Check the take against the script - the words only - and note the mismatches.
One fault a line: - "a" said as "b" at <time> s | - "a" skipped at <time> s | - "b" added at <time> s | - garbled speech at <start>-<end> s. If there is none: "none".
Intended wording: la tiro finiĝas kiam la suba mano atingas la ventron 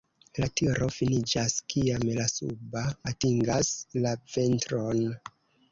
- "mano" skipped at 2.8 s